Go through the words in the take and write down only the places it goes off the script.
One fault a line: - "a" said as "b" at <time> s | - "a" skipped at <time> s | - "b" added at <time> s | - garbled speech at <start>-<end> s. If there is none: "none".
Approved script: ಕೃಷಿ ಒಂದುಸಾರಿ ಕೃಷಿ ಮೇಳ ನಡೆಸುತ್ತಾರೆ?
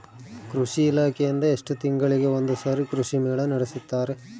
- "ಇಲಾಖೆಯಿಂದ ಎಷ್ಟು ತಿಂಗಳಿಗೆ" added at 0.8 s